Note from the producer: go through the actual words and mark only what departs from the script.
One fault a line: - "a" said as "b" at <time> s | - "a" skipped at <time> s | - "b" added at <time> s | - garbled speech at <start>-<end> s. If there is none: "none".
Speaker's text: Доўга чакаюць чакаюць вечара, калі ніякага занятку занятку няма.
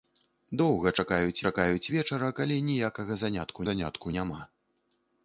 none